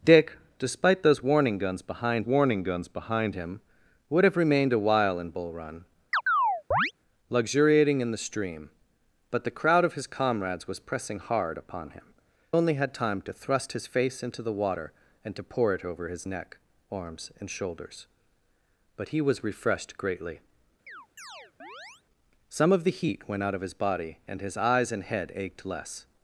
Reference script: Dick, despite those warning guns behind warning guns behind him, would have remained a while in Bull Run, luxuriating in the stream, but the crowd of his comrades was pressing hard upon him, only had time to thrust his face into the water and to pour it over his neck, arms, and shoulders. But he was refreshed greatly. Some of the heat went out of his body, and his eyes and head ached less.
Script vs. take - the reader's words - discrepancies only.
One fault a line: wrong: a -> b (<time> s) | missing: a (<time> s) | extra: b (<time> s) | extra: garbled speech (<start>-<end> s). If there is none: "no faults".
no faults